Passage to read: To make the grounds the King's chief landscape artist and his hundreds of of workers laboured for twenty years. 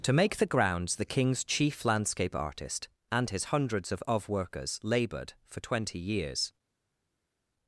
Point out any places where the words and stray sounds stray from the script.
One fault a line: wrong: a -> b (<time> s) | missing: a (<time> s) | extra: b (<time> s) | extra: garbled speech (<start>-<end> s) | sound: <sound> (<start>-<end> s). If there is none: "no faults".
no faults